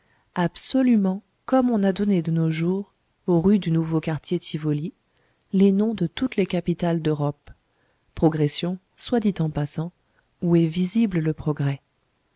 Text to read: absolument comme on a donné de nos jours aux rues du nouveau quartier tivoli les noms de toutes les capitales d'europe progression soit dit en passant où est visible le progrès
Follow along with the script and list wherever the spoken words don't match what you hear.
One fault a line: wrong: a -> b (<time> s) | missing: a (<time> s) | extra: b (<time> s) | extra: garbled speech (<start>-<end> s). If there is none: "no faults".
no faults